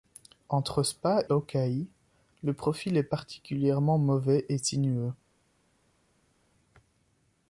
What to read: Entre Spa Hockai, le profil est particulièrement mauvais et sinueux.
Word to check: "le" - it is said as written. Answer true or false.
true